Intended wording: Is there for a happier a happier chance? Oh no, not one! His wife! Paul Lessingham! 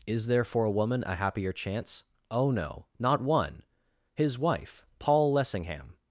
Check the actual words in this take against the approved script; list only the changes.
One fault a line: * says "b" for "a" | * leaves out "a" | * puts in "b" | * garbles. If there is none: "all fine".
* says "woman" for "happier"